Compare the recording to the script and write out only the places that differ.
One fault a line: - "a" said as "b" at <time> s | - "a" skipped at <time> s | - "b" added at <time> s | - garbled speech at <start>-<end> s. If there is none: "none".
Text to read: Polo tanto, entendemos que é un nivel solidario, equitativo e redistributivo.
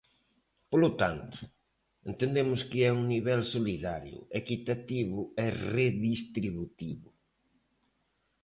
none